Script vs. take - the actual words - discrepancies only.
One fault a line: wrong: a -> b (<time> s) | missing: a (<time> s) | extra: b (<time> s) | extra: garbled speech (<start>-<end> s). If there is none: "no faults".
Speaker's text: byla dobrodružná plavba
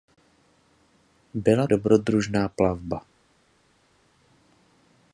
no faults